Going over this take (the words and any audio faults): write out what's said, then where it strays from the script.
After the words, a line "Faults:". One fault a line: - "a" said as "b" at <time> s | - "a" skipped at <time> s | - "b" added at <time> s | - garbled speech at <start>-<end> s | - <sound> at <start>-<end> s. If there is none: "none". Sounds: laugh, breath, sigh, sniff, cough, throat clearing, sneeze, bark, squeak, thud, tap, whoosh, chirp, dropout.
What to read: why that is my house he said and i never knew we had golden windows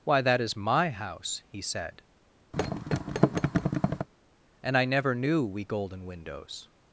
why that is my house he said and i never knew we golden windows
Faults:
- thud at 2.5-4.1 s
- "had" skipped at 5.7 s